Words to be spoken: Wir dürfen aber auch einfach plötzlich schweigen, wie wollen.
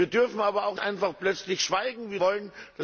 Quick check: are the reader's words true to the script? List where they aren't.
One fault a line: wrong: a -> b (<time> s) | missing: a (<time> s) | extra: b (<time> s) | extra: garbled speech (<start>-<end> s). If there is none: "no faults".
no faults